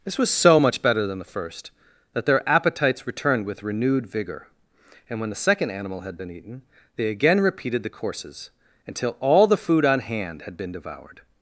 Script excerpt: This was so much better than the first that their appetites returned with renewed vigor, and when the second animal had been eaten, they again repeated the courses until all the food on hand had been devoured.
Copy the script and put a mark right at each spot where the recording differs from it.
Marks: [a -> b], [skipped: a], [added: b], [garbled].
This was so much better than the first that their appetites returned with renewed vigor, and when the second animal had been eaten, they again repeated the courses until all the food on hand had been devoured.